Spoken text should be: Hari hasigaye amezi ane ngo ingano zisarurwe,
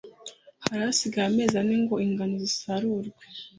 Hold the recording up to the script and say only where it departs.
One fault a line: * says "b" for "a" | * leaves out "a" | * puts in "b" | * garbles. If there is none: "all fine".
all fine